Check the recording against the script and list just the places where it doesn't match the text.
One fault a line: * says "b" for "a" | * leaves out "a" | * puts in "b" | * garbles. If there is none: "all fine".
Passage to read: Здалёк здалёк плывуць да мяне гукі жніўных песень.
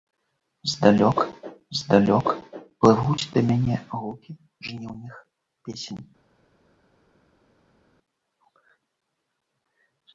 all fine